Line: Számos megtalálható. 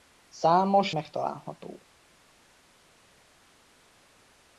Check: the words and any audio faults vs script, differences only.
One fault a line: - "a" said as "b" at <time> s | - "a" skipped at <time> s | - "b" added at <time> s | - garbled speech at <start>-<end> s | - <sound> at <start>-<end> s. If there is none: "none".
none